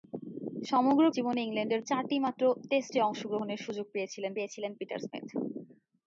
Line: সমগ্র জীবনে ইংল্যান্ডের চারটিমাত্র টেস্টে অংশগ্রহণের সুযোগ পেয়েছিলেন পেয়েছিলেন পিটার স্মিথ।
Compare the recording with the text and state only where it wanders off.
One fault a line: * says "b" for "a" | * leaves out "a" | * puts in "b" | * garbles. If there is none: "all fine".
all fine